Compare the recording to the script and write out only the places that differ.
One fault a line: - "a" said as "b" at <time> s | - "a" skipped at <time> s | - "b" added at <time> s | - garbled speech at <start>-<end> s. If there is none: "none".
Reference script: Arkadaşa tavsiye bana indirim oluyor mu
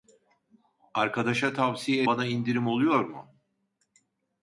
none